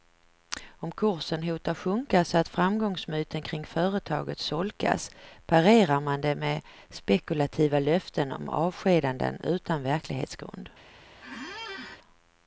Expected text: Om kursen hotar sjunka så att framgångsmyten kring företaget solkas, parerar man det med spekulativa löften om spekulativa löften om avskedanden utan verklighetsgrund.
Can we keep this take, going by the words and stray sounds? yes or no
no